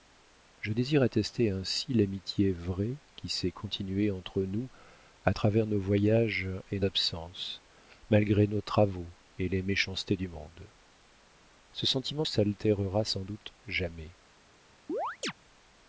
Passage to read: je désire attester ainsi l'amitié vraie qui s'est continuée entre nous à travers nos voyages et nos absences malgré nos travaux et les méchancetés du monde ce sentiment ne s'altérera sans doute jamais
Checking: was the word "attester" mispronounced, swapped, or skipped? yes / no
no